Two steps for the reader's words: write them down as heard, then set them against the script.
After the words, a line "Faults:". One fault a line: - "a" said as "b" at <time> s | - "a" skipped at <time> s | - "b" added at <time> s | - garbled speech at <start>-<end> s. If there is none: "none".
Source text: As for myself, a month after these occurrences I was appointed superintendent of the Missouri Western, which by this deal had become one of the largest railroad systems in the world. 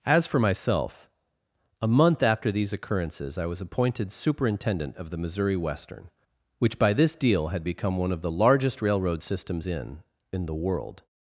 As for myself, a month after these occurrences I was appointed superintendent of the Missouri Western, which by this deal had become one of the largest railroad systems in in the world.
Faults:
- "in" added at 10.3 s